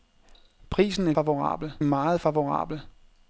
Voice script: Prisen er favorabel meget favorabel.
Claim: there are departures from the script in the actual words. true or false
false